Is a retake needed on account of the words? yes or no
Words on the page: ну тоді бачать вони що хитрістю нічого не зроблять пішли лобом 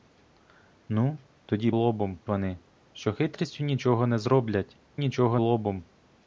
yes